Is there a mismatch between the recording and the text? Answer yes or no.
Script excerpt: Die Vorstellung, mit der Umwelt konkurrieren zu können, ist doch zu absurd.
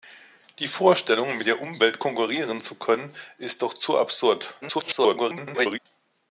yes